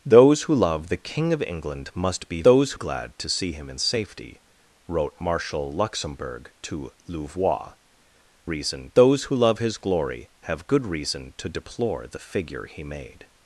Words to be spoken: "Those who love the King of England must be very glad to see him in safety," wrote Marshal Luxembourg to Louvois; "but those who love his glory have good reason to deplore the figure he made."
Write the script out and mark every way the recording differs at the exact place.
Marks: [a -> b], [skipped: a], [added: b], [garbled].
"Those who love the King of England must be [very -> those] glad to see him in safety," wrote Marshal Luxembourg to Louvois; ["but -> reason] those who love his glory have good reason to deplore the figure he made."